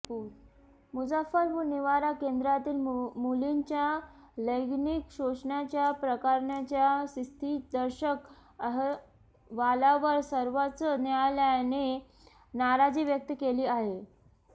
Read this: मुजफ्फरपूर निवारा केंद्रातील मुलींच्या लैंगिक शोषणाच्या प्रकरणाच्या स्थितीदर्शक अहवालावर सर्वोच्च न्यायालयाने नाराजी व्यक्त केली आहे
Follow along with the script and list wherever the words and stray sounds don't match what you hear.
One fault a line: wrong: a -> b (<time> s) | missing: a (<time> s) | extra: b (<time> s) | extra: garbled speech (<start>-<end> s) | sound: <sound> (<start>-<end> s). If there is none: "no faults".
no faults